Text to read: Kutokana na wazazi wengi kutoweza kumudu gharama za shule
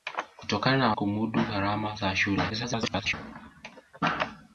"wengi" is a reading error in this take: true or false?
true